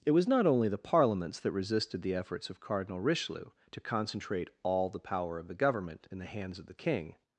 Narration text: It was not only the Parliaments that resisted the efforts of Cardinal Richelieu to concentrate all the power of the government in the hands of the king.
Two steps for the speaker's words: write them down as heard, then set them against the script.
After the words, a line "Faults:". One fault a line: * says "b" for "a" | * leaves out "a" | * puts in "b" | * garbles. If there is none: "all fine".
It was not only the Parliaments that resisted the efforts of Cardinal Richelieu to concentrate all the power of the government in the hands of the king.
Faults:
all fine